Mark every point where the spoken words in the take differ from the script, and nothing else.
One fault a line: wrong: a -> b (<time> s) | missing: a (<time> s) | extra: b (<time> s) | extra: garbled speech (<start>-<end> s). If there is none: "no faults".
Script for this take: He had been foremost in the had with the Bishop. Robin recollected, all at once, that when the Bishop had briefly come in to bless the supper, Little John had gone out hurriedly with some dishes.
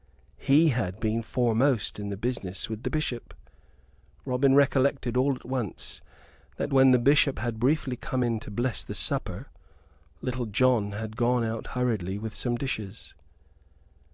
wrong: had -> business (2.2 s)